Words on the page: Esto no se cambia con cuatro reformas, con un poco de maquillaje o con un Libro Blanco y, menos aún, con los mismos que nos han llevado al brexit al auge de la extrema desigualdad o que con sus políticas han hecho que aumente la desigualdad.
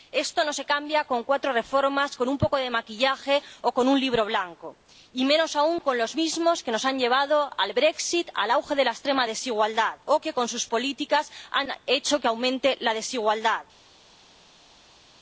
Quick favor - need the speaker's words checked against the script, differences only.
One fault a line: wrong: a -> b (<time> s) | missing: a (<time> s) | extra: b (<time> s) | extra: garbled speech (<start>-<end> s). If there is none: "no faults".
no faults